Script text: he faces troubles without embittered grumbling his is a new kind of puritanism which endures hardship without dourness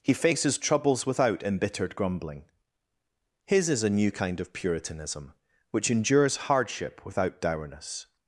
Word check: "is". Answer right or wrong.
right